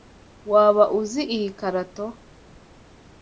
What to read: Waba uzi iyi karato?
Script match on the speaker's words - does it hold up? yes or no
yes